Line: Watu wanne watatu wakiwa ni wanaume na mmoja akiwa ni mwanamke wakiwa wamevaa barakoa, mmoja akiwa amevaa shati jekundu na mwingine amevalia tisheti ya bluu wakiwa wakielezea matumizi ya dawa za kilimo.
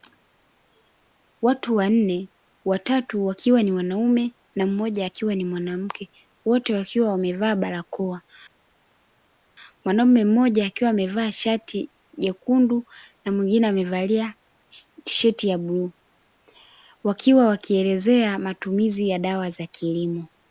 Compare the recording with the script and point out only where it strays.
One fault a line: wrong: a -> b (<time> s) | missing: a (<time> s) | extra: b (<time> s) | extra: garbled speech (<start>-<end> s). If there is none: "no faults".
extra: wote (6.4 s)
extra: mwanaume (9.8 s)